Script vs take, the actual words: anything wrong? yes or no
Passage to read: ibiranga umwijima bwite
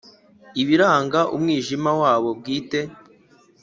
yes